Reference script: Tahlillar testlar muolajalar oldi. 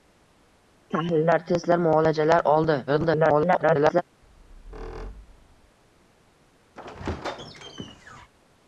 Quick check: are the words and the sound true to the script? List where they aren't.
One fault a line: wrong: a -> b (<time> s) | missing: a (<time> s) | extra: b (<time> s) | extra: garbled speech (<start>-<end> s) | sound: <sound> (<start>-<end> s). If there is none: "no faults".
extra: garbled speech (2.9-4.0 s)
sound: squeak (4.2-5.8 s)
sound: squeak (6.7-8.3 s)